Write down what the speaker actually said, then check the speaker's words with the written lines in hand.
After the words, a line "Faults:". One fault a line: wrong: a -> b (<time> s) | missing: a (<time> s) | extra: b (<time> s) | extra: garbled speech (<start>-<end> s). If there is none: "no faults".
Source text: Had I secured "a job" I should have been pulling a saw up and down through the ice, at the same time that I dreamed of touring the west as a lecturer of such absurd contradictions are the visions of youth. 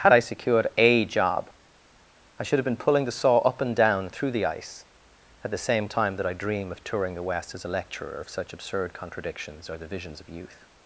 Had I secured "a job" I should have been pulling the saw up and down through the ice, at the same time that I dream of touring the west as a lecturer of such absurd contradictions are the visions of youth.
Faults:
wrong: a -> the (3.0 s)
wrong: dreamed -> dream (6.3 s)